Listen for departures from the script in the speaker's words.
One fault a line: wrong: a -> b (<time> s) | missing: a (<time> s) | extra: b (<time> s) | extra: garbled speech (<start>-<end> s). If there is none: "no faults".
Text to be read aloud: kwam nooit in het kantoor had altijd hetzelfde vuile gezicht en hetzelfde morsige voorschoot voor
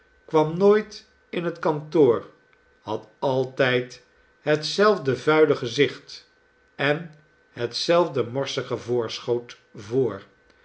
no faults